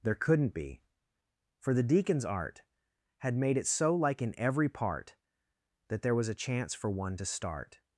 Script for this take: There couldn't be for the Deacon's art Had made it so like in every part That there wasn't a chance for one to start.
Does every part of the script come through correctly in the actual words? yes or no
no